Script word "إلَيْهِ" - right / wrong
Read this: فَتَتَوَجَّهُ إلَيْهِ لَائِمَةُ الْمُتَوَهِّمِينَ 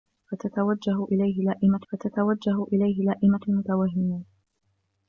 right